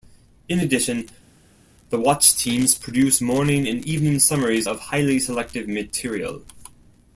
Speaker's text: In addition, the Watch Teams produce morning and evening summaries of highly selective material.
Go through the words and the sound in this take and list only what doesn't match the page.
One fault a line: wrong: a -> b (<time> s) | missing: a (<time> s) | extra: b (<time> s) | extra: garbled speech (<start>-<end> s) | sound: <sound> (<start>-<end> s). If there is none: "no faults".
no faults